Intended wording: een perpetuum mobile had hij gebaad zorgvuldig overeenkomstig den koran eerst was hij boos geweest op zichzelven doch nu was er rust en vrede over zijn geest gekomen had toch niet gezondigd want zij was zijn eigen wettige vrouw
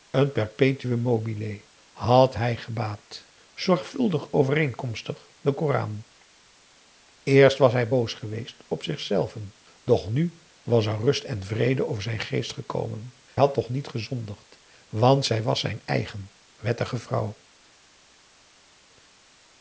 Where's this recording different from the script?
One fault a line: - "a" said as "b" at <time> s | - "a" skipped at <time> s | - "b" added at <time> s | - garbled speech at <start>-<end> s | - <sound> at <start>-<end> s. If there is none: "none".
none